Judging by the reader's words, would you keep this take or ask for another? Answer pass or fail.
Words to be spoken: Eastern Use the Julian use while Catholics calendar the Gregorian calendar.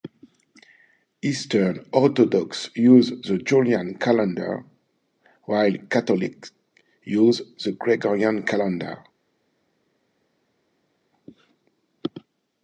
fail